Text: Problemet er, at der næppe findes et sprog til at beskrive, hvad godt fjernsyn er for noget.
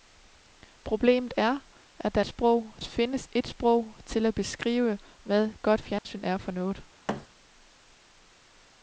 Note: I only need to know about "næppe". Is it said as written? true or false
false